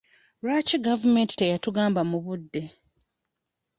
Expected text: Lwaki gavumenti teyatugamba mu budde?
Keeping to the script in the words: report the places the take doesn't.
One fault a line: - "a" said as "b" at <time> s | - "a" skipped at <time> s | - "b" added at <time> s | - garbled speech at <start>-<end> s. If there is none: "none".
none